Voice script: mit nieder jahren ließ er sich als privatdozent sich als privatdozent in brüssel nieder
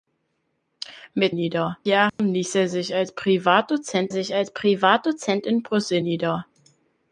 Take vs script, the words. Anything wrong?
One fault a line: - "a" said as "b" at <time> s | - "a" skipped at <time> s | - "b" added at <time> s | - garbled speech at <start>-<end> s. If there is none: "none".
none